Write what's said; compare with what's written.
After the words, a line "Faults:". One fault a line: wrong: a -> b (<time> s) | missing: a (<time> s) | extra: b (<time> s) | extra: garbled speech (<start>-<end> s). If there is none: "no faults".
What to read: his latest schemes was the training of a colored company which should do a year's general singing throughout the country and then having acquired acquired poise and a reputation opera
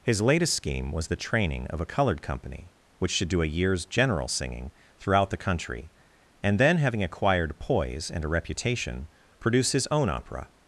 his latest scheme was the training of a colored company which should do a year's general singing throughout the country and then having acquired poise and a reputation produce his own opera
Faults:
wrong: schemes -> scheme (0.5 s)
missing: acquired (7.6 s)
extra: produce his own (9.4 s)